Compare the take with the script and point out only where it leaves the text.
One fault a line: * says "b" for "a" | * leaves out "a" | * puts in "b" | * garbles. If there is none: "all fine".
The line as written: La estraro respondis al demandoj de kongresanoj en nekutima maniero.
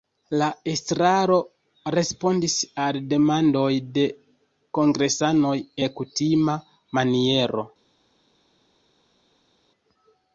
* leaves out "en"